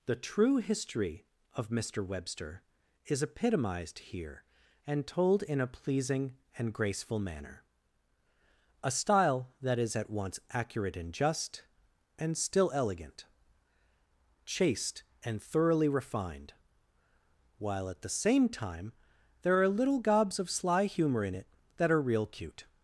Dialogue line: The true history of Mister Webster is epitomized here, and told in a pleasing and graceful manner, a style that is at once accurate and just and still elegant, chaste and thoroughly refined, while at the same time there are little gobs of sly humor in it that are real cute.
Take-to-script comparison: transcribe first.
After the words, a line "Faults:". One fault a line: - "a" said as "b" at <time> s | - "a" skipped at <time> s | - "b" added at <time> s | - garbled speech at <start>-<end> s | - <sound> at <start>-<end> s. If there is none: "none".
The true history of Mister Webster is epitomized here, and told in a pleasing and graceful manner, a style that is at once accurate and just and still elegant, chaste and thoroughly refined, while at the same time there are little gobs of sly humor in it that are real cute.
Faults:
none